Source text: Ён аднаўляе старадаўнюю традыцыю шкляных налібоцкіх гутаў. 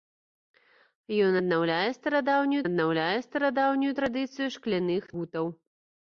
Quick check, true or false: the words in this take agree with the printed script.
false